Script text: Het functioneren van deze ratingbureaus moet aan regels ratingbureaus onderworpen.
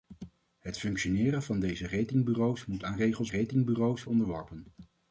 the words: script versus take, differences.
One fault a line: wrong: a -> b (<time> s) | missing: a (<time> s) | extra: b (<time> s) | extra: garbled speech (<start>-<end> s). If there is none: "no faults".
no faults